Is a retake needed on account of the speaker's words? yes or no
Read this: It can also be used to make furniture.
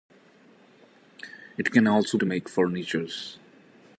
yes